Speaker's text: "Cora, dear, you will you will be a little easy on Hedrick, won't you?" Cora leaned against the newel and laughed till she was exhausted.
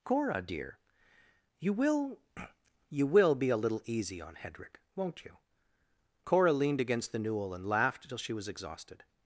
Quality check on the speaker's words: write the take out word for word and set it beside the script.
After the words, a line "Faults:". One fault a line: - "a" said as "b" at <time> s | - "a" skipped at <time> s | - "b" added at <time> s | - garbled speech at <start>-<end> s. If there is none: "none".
"Cora, dear, you will you will be a little easy on Hedrick, won't you?" Cora leaned against the newel and laughed till she was exhausted.
Faults:
none